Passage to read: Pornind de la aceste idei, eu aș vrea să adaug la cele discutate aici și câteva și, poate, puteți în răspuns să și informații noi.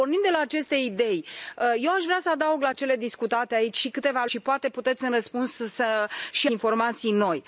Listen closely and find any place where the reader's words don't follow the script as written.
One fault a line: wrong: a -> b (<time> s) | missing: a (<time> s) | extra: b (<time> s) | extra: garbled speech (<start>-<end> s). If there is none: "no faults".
no faults